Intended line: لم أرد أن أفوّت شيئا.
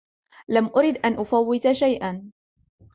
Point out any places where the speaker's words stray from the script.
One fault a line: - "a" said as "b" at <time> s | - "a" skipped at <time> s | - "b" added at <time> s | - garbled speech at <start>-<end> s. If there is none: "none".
none